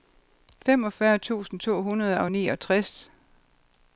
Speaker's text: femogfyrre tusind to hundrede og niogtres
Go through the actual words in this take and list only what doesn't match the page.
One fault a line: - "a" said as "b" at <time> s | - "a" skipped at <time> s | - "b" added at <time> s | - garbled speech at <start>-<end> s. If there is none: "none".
none